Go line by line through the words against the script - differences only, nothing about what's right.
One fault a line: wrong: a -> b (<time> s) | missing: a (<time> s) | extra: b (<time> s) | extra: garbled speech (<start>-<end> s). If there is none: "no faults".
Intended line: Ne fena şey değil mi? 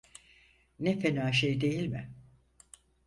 no faults